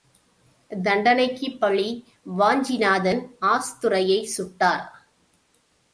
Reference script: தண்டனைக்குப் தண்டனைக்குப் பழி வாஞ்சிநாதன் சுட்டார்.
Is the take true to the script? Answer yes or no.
no